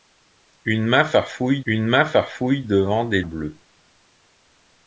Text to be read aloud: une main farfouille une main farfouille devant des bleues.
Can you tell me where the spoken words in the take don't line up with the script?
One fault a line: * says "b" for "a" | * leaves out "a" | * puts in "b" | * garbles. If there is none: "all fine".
all fine